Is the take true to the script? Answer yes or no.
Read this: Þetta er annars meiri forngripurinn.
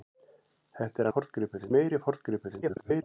no